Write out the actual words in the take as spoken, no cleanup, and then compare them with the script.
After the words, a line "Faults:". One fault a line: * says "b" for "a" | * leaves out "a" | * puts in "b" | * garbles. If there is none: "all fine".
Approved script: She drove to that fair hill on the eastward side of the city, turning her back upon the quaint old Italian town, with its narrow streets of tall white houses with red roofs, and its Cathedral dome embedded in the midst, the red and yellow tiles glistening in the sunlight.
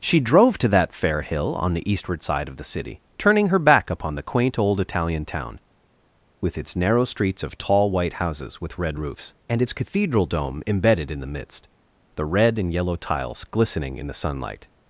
She drove to that fair hill on the eastward side of the city, turning her back upon the quaint old Italian town, with its narrow streets of tall white houses with red roofs, and its Cathedral dome embedded in the midst, the red and yellow tiles glistening in the sunlight.
Faults:
all fine